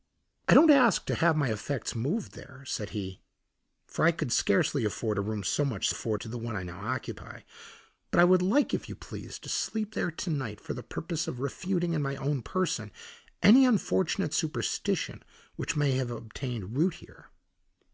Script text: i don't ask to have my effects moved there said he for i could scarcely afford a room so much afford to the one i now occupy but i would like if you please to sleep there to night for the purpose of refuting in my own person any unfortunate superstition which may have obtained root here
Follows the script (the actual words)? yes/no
yes